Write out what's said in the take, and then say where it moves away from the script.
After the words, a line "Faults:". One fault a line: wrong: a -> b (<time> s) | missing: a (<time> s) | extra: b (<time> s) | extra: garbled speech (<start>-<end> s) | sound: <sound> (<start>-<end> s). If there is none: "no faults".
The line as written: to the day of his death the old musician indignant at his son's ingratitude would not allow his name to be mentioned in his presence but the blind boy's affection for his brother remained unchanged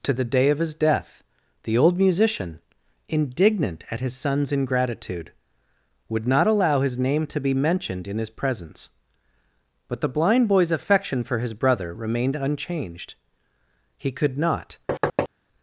to the day of his death the old musician indignant at his son's ingratitude would not allow his name to be mentioned in his presence but the blind boy's affection for his brother remained unchanged he could not
Faults:
extra: he could not (14.0 s)
sound: thud (14.9-15.3 s)